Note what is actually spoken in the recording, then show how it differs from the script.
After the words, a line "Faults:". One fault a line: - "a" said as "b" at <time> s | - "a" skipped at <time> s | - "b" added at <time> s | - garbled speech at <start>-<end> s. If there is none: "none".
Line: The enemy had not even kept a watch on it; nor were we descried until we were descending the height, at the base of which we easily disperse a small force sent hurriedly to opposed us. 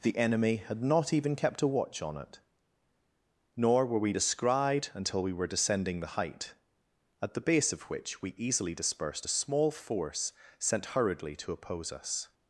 The enemy had not even kept a watch on it; nor were we descried until we were descending the height, at the base of which we easily dispersed a small force sent hurriedly to oppose us.
Faults:
- "disperse" said as "dispersed" at 8.7 s
- "opposed" said as "oppose" at 11.5 s